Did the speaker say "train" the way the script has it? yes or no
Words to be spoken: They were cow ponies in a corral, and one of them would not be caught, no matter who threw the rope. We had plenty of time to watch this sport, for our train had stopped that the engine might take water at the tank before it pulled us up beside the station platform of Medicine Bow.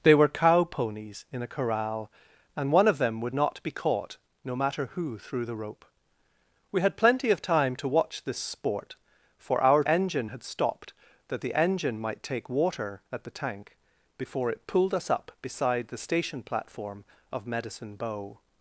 no